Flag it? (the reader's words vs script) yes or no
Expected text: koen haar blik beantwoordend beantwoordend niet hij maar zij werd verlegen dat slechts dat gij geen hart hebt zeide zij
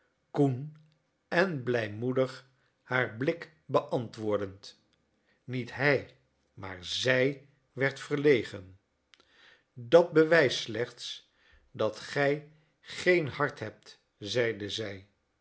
yes